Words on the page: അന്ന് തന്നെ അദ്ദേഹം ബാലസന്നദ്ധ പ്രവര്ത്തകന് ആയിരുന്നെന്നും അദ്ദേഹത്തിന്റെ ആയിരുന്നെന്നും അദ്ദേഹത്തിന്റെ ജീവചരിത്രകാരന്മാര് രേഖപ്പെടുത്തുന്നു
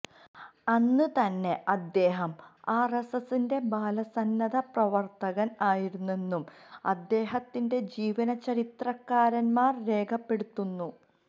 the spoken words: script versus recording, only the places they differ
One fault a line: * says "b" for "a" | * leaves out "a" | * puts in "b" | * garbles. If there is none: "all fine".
* puts in "ആര്എസ്എസിന്റെ"
* leaves out "ആയിരുന്നെന്നും അദ്ദേഹത്തിന്റെ"